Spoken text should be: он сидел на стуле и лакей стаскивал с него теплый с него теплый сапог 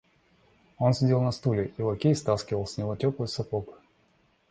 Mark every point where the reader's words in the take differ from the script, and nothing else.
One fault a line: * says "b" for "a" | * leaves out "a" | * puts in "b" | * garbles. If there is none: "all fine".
* leaves out "с него теплый"